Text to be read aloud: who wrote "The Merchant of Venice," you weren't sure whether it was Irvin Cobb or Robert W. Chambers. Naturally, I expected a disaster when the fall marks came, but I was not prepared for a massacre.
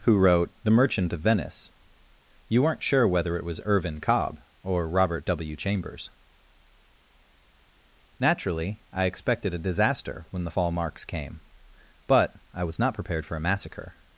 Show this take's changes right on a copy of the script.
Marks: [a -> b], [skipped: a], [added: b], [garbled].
who wrote "The Merchant of Venice," you weren't sure whether it was Irvin Cobb or Robert W. Chambers. Naturally, I expected a disaster when the fall marks came, but I was not prepared for a massacre.